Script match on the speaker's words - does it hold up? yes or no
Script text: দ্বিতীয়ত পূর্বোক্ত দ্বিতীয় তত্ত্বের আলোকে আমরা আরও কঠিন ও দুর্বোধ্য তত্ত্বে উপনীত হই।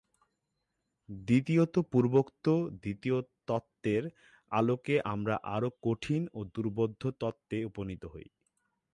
yes